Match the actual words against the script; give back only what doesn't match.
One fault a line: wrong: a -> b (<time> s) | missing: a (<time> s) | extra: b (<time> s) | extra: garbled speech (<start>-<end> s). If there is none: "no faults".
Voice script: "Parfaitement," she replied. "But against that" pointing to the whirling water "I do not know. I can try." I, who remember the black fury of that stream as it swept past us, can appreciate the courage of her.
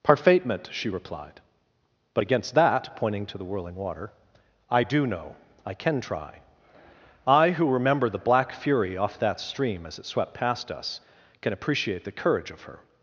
missing: not (5.1 s)
wrong: of -> off (9.0 s)